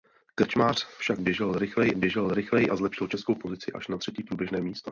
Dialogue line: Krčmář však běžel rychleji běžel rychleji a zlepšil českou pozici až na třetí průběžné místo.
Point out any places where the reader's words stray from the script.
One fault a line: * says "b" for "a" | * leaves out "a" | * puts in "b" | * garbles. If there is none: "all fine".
all fine